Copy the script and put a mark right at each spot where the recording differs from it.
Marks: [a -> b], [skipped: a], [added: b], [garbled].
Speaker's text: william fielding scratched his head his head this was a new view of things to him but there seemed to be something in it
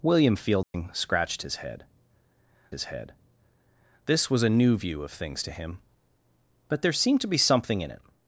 william fielding scratched his head his head this was a new view of things to him but there seemed to be something in it